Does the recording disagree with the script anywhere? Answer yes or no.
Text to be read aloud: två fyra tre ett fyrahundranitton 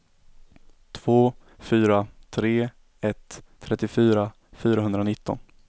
yes